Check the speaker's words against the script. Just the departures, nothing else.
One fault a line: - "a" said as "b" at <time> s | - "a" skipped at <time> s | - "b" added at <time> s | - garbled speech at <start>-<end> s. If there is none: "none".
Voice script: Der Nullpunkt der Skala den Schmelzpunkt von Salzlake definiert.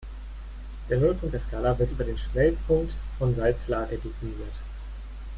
- "wird über" added at 1.8 s